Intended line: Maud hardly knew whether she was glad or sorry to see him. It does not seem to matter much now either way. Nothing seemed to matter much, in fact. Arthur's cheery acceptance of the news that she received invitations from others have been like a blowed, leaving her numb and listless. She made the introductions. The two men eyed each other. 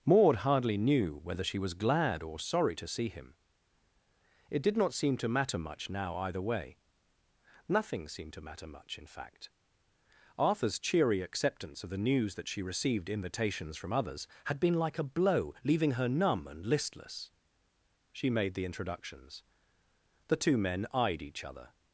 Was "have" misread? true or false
true